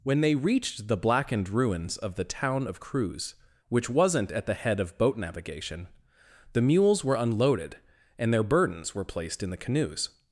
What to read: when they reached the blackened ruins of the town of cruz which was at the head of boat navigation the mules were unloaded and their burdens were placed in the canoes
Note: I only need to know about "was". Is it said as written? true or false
false